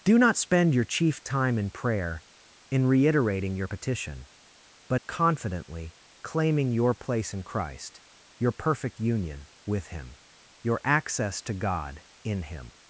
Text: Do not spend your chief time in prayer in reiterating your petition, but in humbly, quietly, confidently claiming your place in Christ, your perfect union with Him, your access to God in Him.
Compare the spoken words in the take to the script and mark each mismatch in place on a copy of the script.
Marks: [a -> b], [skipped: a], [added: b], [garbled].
Do not spend your chief time in prayer in reiterating your petition, but [skipped: in humbly, quietly,] confidently claiming your place in Christ, your perfect union with Him, your access to God in Him.